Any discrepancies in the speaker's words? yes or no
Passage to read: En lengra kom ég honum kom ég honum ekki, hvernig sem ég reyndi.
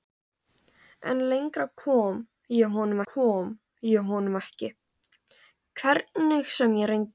no